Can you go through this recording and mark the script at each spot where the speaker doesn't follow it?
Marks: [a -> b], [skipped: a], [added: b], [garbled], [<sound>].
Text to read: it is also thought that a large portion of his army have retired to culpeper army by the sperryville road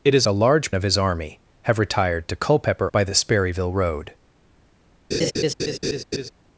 it is [skipped: also thought that] a large [skipped: portion] of his army have retired to culpeper [skipped: army] by the sperryville road [laugh]